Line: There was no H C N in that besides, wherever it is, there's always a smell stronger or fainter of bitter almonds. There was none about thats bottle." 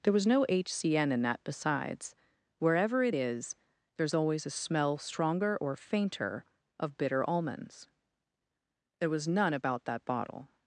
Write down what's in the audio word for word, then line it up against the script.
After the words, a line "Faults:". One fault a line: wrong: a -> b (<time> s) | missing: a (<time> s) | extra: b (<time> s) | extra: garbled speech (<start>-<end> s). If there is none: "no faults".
There was no H C N in that besides, wherever it is, there's always a smell stronger or fainter of bitter almonds. There was none about that bottle."
Faults:
wrong: thats -> that (9.9 s)